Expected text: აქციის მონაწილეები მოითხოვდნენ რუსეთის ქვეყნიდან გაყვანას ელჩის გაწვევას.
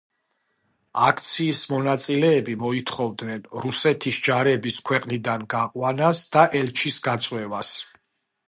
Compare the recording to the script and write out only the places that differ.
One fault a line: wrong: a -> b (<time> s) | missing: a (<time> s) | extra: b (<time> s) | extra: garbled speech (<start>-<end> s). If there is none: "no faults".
extra: ჯარების (4.3 s)
extra: და (6.4 s)